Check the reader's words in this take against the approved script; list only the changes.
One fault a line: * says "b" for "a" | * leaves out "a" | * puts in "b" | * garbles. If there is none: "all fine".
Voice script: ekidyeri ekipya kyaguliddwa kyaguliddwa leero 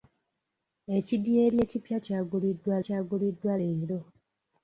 all fine